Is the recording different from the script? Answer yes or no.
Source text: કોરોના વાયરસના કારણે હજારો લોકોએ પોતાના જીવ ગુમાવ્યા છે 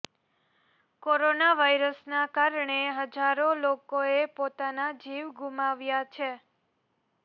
no